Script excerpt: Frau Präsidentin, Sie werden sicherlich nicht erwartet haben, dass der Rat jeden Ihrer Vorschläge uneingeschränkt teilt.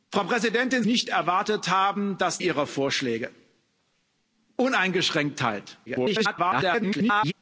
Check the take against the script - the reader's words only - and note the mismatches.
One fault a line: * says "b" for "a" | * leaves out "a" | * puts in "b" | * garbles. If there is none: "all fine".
* leaves out "Sie werden sicherlich"
* leaves out "der Rat jeden"
* garbles